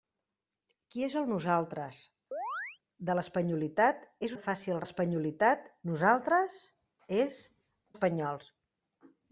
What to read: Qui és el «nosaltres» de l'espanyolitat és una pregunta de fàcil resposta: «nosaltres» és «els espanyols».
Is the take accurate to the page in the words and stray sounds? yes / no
no